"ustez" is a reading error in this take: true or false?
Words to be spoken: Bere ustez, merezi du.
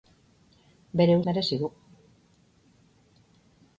true